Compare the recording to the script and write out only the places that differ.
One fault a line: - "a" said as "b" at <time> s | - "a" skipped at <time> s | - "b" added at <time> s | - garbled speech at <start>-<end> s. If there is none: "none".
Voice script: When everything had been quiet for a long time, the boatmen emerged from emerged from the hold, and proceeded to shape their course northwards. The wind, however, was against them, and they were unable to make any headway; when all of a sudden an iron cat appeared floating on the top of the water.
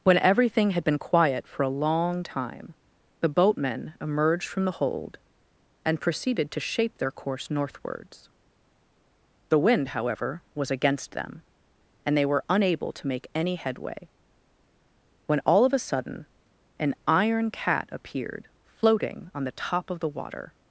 - "emerged from" skipped at 4.7 s